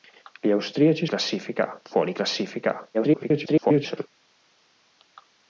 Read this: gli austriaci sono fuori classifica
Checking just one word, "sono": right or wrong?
wrong